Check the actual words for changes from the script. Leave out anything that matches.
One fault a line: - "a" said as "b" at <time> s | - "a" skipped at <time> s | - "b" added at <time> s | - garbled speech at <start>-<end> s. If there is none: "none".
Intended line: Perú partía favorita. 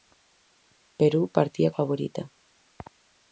none